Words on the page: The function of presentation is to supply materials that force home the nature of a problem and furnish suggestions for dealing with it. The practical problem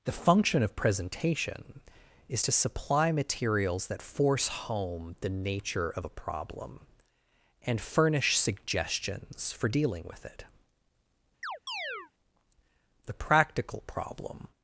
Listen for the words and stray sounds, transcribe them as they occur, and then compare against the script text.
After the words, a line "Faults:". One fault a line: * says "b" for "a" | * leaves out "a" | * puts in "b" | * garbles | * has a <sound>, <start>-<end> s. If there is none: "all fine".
The function of presentation is to supply materials that force home the nature of a problem and furnish suggestions for dealing with it. The practical problem
Faults:
* has a chirp, 11.4-12.1 s